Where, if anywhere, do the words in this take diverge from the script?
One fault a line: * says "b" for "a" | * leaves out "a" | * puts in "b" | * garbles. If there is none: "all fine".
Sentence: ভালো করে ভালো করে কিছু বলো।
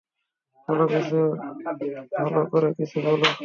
* leaves out "ভালো করে"